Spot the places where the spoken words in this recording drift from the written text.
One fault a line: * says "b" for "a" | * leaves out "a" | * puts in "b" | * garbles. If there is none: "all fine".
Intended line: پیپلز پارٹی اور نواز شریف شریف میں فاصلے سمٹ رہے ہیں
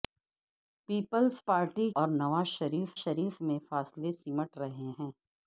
all fine